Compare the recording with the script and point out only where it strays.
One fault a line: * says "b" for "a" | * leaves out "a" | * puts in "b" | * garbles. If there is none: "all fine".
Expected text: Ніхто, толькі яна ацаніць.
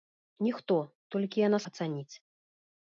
all fine